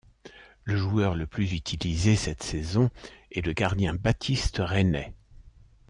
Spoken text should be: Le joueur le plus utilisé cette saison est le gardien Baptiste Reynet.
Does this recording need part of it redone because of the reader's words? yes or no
no